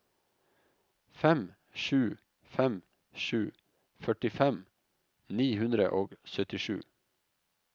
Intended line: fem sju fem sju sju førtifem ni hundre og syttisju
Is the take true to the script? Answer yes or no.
no